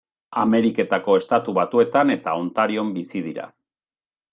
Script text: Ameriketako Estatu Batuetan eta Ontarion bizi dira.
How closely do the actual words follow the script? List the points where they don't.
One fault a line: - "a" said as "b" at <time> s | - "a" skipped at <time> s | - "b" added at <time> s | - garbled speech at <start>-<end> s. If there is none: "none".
none